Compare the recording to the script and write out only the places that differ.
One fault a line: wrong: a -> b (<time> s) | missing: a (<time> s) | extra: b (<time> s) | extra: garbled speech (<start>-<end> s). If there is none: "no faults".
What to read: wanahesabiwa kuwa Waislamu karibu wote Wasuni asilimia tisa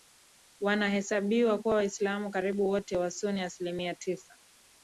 no faults